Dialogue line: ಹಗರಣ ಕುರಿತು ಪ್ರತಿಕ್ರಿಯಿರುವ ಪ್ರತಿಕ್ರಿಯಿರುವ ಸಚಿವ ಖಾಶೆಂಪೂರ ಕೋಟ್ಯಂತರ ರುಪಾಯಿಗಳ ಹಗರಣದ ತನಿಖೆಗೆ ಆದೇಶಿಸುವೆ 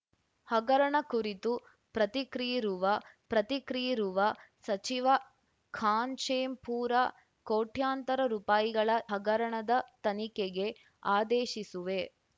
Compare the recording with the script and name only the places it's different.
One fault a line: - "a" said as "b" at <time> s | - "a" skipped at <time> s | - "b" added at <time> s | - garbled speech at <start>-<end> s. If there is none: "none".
none